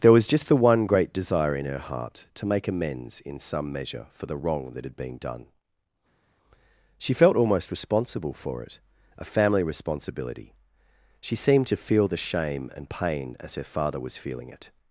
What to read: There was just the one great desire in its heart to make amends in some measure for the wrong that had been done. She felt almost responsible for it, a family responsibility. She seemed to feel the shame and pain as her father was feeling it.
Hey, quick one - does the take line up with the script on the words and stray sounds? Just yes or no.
no